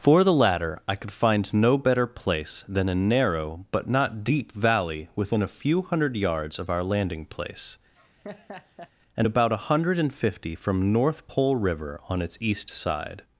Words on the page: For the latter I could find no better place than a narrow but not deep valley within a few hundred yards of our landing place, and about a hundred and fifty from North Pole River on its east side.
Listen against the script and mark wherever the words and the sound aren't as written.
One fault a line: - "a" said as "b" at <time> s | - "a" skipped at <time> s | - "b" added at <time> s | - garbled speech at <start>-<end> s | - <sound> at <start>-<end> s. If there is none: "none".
- laugh at 7.9-8.9 s